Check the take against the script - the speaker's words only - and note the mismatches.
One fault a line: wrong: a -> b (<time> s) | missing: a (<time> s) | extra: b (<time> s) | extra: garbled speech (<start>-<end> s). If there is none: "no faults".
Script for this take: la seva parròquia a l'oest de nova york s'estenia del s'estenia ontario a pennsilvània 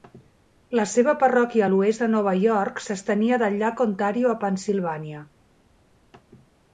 wrong: s'estenia -> llac (3.6 s)